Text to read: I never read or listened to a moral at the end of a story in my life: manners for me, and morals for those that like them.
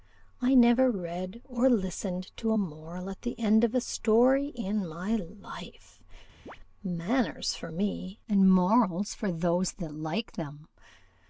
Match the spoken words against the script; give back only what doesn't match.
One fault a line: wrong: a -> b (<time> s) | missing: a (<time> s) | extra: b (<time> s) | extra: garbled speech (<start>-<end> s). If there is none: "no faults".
no faults